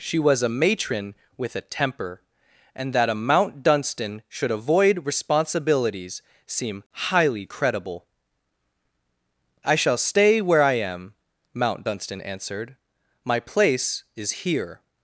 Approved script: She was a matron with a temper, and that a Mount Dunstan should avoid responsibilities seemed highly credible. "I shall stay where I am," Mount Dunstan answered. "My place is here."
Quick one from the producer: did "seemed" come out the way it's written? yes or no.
no